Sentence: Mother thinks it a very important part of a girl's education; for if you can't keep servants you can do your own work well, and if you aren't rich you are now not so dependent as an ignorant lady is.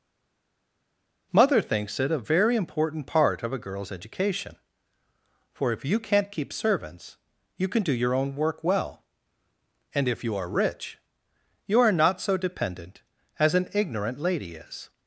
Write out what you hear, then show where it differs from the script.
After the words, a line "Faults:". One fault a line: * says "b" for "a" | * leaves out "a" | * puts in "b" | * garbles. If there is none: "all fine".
Mother thinks it a very important part of a girl's education; for if you can't keep servants you can do your own work well, and if you are rich you are not so dependent as an ignorant lady is.
Faults:
* says "are" for "aren't"
* leaves out "now"